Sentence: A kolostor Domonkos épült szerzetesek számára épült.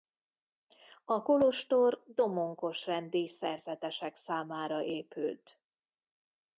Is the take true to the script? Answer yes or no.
no